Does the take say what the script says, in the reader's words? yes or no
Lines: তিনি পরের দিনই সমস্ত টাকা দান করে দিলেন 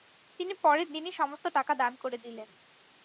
yes